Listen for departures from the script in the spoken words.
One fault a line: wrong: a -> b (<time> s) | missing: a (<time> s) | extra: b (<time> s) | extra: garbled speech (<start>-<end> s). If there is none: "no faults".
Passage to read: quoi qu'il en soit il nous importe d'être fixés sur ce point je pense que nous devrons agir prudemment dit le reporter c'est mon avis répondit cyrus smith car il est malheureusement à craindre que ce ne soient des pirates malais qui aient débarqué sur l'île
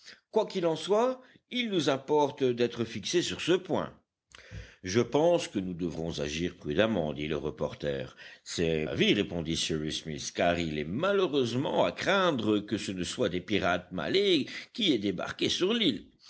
missing: mon (8.9 s)